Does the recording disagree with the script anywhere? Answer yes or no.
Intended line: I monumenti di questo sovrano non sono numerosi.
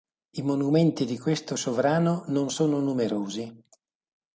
no